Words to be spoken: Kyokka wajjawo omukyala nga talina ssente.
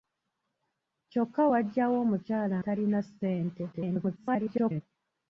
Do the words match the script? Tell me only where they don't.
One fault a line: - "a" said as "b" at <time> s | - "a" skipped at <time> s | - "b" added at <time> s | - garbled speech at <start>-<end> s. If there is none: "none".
- "nga" skipped at 2.6 s
- garbled speech at 3.7-4.8 s